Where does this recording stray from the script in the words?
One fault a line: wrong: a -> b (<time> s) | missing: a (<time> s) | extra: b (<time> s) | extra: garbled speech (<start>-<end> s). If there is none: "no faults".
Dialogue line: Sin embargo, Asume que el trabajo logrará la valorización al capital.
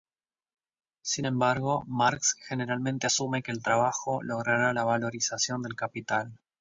extra: Marx generalmente (1.8 s)
wrong: al -> del (5.6 s)